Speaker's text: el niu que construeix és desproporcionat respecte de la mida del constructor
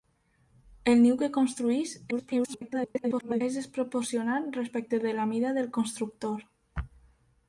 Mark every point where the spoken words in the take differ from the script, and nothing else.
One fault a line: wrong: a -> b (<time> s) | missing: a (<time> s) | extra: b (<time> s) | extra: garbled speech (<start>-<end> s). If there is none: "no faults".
extra: garbled speech (2.1-3.4 s)